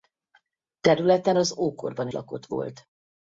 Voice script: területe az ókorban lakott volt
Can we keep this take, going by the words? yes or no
yes